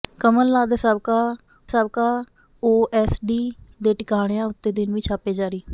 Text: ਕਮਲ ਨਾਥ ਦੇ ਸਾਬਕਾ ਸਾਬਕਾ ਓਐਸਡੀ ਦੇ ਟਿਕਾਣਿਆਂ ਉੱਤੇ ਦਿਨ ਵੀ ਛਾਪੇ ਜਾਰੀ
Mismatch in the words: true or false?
false